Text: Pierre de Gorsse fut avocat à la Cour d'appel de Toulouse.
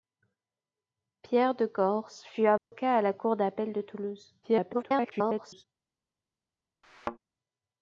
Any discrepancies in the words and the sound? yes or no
yes